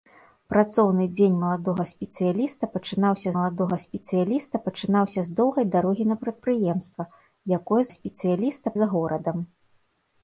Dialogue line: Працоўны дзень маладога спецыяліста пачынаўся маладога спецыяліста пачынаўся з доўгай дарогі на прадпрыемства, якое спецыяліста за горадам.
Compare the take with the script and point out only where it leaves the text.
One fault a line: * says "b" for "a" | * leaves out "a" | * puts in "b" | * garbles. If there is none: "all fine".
all fine